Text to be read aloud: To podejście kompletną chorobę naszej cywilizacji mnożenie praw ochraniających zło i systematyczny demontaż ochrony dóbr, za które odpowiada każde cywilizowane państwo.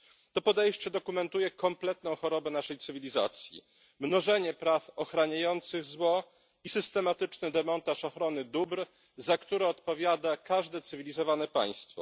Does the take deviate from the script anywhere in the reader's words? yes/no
yes